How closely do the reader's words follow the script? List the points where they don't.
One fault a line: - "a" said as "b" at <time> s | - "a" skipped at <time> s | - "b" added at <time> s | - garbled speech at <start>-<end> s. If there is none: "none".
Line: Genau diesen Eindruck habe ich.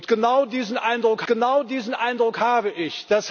- "genau diesen Eindruck" added at 1.3 s